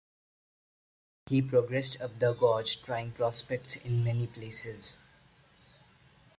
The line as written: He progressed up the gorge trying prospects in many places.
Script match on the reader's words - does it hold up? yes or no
yes